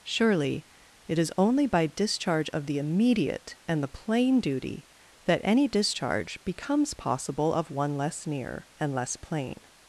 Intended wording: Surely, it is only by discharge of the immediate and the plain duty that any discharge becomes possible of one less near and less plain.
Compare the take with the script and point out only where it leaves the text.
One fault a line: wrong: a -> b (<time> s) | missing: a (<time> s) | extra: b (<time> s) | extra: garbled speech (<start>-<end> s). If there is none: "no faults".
no faults